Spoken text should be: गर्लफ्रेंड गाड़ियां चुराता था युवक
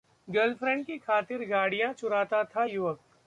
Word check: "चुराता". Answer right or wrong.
right